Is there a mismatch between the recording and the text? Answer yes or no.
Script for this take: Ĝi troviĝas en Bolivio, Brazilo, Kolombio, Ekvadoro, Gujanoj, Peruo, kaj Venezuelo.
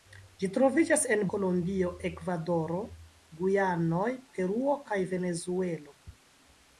yes